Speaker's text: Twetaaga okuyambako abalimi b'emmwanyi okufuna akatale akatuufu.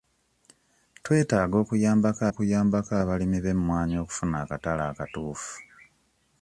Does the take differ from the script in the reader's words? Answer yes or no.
yes